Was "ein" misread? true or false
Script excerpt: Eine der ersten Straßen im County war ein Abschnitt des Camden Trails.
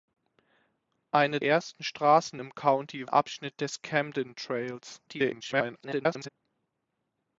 true